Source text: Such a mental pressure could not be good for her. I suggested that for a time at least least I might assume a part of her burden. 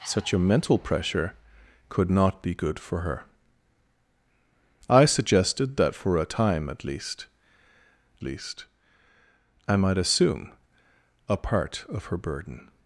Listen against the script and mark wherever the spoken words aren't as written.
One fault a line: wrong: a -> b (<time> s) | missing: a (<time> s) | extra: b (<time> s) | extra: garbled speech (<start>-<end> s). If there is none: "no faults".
no faults